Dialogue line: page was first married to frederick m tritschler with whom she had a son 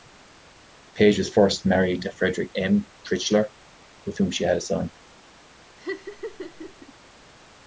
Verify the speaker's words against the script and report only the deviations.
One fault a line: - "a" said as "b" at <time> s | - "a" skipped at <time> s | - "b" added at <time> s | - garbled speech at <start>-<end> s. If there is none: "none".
none